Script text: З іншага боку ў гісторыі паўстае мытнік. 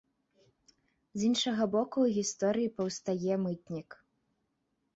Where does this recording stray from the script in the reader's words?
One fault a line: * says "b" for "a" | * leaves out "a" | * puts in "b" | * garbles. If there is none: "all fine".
all fine